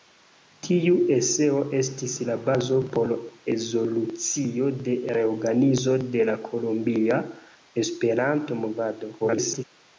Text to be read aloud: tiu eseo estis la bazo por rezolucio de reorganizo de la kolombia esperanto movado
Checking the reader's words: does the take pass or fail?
fail